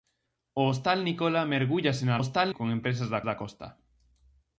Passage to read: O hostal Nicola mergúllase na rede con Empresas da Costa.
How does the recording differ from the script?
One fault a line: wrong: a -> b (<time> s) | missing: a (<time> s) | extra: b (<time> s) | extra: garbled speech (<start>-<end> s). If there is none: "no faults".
wrong: rede -> hostal (2.2 s)
extra: da (3.3 s)